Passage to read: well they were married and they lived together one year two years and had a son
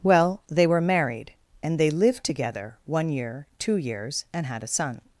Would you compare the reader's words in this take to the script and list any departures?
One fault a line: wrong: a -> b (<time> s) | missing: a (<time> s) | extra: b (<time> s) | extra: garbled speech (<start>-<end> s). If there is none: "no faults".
no faults